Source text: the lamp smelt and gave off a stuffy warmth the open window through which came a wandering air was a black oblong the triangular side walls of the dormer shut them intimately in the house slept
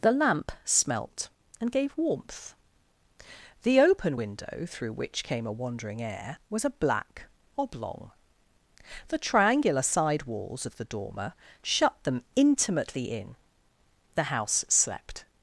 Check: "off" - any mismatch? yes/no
yes